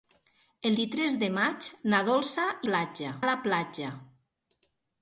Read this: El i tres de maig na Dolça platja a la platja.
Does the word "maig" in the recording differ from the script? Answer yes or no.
no